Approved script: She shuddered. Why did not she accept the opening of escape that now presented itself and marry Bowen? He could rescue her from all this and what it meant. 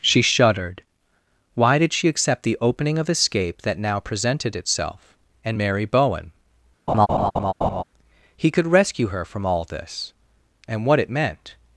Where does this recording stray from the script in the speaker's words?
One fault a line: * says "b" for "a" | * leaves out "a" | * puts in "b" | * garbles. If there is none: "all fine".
* leaves out "not"